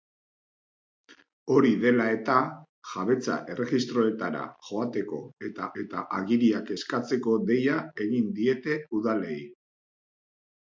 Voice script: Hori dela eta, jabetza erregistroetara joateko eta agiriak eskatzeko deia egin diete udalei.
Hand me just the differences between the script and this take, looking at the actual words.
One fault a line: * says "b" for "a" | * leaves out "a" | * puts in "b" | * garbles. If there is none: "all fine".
* puts in "eta"